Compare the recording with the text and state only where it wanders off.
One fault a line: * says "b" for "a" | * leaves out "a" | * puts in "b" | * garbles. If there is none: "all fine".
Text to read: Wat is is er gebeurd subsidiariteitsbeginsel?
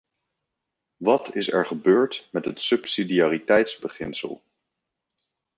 * leaves out "is"
* puts in "met het"